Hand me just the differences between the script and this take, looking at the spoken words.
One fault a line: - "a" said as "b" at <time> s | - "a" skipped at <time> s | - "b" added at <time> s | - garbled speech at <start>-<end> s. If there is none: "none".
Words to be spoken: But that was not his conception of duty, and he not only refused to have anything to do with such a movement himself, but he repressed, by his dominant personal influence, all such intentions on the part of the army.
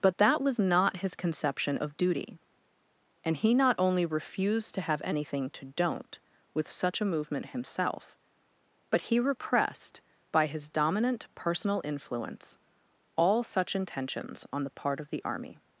- "do" said as "don't" at 5.7 s